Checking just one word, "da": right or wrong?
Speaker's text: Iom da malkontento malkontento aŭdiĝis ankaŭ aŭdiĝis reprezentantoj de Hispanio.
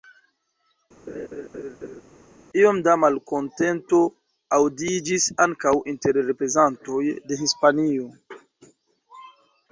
right